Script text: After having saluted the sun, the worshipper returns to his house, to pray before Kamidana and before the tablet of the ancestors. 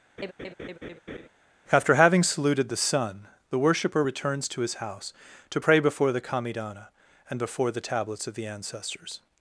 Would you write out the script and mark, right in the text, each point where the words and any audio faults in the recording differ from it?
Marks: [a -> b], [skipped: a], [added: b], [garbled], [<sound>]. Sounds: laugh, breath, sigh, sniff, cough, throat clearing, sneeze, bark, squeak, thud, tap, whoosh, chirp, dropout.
[laugh] After having saluted the sun, the worshipper returns to his house, to pray before [added: the] Kamidana and before the [tablet -> tablets] of the ancestors.